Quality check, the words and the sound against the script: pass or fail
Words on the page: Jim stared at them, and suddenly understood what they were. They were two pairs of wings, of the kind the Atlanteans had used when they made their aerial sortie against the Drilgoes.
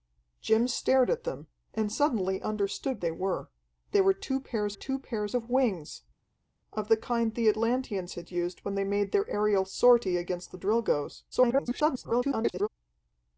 fail